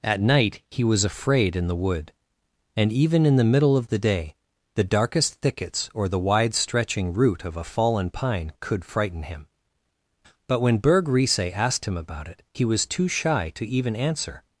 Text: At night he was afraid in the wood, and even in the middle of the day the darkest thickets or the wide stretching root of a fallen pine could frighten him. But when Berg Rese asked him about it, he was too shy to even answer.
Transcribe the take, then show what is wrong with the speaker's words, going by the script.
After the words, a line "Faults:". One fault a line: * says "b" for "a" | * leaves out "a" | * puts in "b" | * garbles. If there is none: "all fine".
At night he was afraid in the wood, and even in the middle of the day the darkest thickets or the wide stretching root of a fallen pine could frighten him. But when Berg Rese asked him about it, he was too shy to even answer.
Faults:
all fine